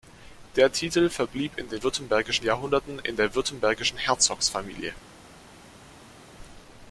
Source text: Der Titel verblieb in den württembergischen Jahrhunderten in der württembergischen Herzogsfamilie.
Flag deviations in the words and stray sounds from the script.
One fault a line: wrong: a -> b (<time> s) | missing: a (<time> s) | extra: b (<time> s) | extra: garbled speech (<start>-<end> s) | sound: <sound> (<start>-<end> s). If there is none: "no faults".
no faults